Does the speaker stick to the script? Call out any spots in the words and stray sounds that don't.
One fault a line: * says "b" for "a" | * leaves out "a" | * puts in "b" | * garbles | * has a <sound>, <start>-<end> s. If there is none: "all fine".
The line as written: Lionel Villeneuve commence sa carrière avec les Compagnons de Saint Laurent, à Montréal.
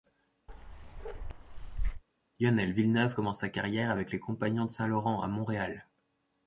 * has a bark, 0.5-2.0 s